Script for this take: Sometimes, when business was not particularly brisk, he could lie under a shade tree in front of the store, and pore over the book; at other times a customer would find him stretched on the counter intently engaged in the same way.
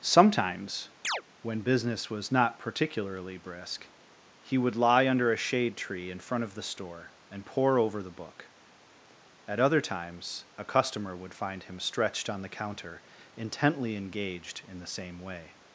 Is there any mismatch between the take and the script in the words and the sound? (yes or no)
yes